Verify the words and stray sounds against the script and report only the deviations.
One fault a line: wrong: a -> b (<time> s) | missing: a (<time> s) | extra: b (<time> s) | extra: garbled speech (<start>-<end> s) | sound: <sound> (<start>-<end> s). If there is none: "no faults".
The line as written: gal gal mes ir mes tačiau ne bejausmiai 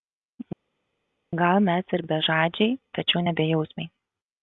missing: gal (1.6 s)
wrong: mes -> bežadžiai (2.1 s)